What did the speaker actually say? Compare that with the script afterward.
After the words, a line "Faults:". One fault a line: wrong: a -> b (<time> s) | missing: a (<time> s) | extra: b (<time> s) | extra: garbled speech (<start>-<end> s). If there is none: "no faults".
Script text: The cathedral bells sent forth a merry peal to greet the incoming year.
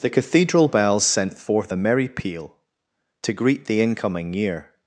The cathedral bells sent forth a merry peal to greet the incoming year.
Faults:
no faults